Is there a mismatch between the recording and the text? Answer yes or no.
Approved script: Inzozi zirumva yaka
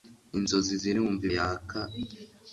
no